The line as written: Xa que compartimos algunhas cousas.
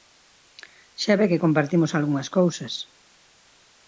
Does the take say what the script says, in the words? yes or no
no